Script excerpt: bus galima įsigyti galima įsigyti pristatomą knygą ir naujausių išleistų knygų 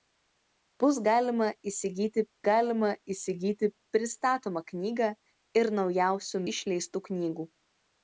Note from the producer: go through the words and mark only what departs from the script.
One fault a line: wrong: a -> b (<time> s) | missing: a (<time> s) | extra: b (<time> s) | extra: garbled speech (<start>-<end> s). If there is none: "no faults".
no faults